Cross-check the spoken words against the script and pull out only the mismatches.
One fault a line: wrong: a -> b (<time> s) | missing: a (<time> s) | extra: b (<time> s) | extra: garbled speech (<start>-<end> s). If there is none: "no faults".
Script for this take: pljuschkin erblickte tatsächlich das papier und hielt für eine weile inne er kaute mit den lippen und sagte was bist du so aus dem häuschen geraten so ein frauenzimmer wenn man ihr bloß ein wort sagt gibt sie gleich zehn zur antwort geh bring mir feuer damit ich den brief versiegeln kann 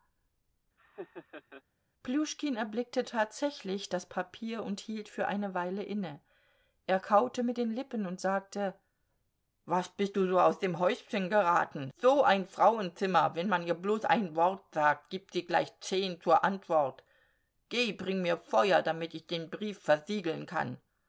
no faults